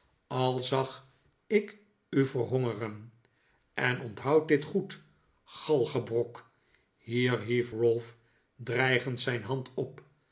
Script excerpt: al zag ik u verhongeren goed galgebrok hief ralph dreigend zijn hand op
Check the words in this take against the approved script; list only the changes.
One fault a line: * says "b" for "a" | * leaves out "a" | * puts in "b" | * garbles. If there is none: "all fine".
* puts in "en onthoud dit"
* puts in "hier"